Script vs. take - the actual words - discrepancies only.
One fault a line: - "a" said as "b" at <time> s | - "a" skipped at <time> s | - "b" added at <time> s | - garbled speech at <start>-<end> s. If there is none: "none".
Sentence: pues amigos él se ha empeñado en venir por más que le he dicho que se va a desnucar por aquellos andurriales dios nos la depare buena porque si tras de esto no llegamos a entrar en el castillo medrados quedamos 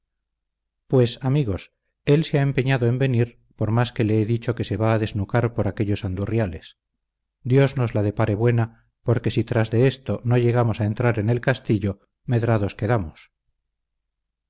none